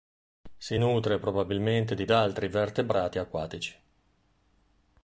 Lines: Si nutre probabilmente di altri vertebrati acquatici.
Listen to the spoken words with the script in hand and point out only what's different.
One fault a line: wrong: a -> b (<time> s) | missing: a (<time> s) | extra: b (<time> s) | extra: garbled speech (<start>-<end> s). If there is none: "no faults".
no faults